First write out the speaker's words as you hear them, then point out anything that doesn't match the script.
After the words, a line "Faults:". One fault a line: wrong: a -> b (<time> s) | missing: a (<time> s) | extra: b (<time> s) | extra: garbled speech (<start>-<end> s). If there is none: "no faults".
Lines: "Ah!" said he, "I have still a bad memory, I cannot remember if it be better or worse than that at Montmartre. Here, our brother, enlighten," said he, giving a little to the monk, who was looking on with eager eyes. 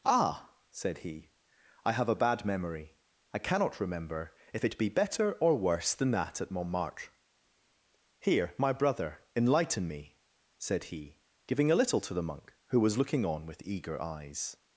"Ah!" said he, "I have a bad memory, I cannot remember if it be better or worse than that at Montmartre. Here, my brother, enlighten me," said he, giving a little to the monk, who was looking on with eager eyes.
Faults:
missing: still (2.1 s)
wrong: our -> my (8.6 s)
extra: me (9.9 s)